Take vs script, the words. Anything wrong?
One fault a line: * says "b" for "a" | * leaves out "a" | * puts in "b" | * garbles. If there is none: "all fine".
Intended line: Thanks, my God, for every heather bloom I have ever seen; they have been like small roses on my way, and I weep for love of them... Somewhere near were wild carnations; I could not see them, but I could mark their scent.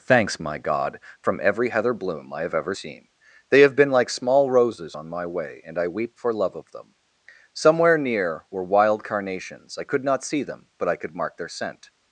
* says "from" for "for"